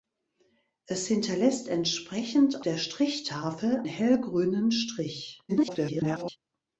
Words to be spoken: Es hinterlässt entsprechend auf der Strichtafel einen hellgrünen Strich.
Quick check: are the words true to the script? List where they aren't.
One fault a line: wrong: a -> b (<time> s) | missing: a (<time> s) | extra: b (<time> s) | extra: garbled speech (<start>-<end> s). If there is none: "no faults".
missing: auf (2.6 s)
missing: einen (3.8 s)
extra: garbled speech (5.5-6.4 s)